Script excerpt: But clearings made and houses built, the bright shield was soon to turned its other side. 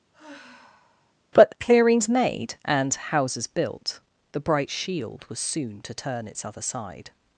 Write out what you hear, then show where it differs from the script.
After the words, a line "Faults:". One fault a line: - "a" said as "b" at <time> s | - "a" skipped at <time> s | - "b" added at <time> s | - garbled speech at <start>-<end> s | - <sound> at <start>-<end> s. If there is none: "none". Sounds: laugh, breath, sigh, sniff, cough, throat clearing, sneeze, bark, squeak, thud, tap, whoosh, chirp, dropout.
But clearings made and houses built, the bright shield was soon to turn its other side.
Faults:
- sigh at 0.1-1.1 s
- "turned" said as "turn" at 5.9 s